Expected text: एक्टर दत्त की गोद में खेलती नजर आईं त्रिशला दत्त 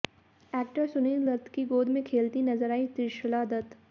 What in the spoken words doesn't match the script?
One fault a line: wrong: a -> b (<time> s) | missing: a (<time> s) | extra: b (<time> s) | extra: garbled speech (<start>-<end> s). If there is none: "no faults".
extra: सुनील (0.8 s)